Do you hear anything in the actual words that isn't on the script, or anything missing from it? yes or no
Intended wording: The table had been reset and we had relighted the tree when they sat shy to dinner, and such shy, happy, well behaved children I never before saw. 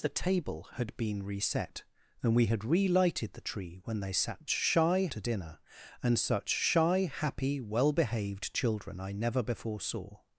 no